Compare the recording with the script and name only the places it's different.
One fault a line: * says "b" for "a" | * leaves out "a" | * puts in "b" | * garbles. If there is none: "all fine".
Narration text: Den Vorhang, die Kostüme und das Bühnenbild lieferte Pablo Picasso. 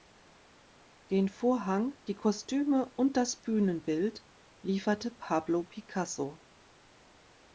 all fine